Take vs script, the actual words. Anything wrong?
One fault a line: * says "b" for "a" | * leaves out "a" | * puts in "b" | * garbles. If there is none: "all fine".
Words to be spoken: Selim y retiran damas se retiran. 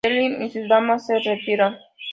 * says "sus" for "retiran"